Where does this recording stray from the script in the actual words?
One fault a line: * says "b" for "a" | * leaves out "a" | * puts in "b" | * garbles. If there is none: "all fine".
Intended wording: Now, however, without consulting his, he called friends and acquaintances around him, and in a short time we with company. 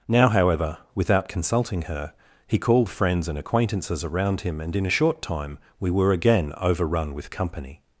* says "her" for "his"
* puts in "were again overrun"